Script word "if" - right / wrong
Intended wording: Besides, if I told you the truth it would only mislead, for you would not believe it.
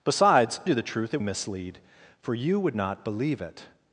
wrong